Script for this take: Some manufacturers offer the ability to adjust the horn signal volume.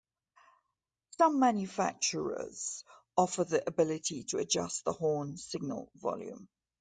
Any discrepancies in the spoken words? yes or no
no